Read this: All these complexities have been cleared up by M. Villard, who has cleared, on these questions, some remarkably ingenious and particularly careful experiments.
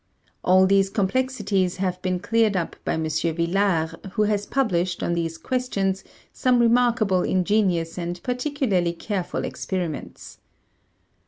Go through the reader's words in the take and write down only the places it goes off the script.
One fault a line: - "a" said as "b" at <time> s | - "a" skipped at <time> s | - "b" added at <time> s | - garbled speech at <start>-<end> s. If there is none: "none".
- "cleared" said as "published" at 4.5 s